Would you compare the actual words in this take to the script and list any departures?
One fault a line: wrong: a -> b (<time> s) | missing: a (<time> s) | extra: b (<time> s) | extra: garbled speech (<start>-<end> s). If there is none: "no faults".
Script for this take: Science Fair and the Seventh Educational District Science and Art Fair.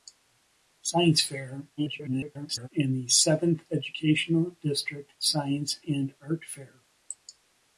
extra: garbled speech (1.8-2.7 s)